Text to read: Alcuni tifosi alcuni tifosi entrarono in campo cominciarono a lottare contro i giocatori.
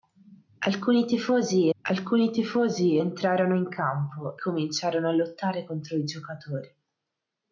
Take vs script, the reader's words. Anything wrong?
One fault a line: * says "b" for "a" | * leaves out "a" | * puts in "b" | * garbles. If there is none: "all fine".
all fine